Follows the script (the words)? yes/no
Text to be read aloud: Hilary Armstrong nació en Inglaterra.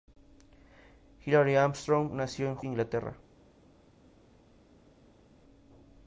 yes